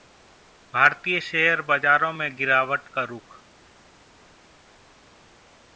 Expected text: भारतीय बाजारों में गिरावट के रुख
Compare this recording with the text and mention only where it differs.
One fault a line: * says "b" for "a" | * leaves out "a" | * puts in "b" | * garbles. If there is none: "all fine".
* puts in "शेयर"
* says "का" for "के"